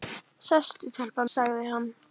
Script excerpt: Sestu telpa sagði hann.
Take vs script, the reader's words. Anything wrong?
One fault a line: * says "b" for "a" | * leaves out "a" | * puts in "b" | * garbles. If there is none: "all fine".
all fine